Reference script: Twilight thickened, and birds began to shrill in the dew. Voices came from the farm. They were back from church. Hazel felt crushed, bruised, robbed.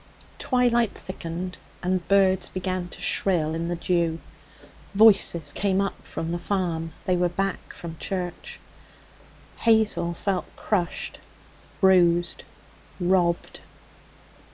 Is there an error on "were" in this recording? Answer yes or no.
no